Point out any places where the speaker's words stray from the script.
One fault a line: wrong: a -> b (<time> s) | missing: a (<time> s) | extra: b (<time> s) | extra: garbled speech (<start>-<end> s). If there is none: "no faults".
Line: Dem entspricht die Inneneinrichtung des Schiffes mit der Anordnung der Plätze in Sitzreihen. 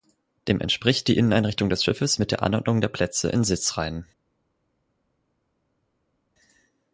no faults